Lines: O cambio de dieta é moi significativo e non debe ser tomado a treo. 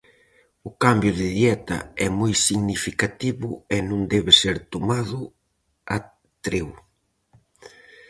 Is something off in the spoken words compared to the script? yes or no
no